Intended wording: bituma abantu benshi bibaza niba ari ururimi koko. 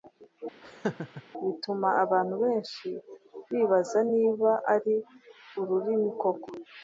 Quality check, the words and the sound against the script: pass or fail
fail